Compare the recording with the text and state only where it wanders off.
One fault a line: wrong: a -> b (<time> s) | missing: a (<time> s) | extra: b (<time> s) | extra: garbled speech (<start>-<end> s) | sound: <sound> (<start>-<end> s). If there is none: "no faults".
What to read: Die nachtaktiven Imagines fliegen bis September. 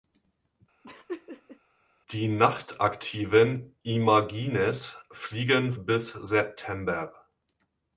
sound: laugh (0.8-1.6 s)